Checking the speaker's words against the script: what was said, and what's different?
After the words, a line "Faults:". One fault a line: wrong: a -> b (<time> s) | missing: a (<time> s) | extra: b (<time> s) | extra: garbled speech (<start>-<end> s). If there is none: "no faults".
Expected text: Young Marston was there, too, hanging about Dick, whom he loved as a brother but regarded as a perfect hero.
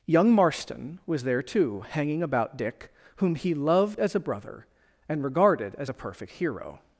Young Marston was there, too, hanging about Dick, whom he loved as a brother and regarded as a perfect hero.
Faults:
wrong: but -> and (5.1 s)